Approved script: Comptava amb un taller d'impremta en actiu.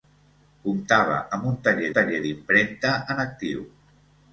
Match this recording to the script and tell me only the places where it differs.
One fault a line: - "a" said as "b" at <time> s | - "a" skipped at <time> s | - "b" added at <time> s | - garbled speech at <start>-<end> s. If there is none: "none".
- "taller" added at 1.9 s